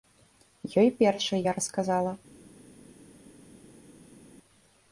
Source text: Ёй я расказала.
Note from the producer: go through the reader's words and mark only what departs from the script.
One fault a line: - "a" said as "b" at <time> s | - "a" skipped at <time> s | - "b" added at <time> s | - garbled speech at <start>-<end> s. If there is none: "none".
- "першай" added at 1.0 s